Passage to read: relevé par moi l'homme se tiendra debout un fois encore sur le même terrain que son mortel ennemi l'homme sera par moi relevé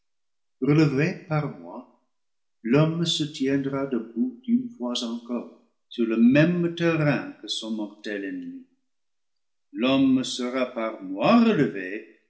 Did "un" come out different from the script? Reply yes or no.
yes